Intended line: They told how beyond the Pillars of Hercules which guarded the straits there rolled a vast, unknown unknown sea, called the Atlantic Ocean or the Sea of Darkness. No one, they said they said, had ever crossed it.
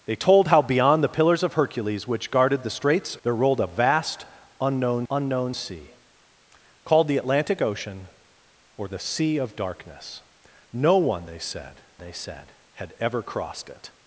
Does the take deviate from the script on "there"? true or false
false